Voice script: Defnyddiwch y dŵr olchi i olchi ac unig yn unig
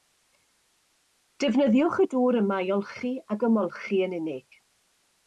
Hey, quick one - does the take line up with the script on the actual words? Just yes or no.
no